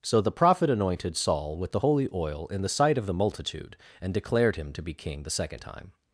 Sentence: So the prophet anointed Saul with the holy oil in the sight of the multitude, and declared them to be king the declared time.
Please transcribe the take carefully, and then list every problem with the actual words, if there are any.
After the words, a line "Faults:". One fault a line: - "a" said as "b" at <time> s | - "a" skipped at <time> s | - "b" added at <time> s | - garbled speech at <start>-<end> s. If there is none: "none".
So the prophet anointed Saul with the holy oil in the sight of the multitude, and declared him to be king the second time.
Faults:
- "them" said as "him" at 4.5 s
- "declared" said as "second" at 5.3 s